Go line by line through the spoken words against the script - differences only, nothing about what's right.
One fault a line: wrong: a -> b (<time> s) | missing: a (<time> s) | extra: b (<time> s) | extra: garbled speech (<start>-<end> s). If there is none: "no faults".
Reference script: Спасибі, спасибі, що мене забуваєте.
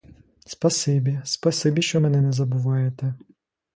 extra: не (2.2 s)